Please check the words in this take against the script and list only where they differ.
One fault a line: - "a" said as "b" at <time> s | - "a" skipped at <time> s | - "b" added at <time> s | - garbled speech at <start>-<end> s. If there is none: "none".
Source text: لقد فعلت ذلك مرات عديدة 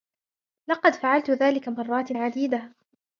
none